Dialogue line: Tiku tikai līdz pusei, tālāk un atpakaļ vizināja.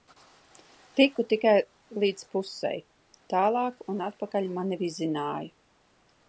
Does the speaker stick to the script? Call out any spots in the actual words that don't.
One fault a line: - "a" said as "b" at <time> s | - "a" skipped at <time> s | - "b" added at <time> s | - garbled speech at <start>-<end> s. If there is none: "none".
- "mani" added at 4.6 s